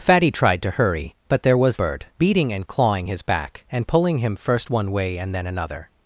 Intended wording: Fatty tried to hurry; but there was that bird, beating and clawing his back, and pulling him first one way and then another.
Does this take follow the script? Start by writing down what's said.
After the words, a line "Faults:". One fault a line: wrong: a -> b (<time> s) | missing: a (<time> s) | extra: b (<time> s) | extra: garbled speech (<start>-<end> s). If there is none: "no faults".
Fatty tried to hurry; but there was bird, beating and clawing his back, and pulling him first one way and then another.
Faults:
missing: that (1.8 s)